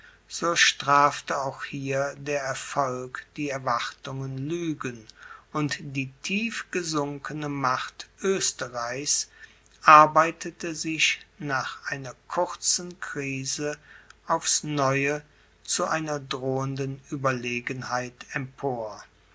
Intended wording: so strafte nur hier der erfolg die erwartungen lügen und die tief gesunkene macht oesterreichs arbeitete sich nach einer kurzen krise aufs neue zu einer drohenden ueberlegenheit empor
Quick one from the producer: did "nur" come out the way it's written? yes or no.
no